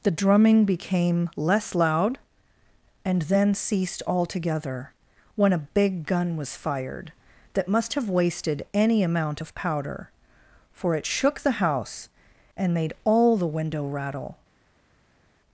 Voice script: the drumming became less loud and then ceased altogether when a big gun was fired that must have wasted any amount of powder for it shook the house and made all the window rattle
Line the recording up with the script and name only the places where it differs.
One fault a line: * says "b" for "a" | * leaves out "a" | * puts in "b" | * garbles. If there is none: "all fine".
all fine